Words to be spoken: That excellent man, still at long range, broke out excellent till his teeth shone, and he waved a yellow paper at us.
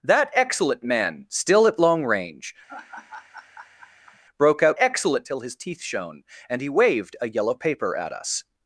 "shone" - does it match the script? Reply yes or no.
yes